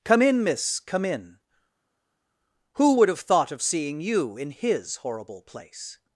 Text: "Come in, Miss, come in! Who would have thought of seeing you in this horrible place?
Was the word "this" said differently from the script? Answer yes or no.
yes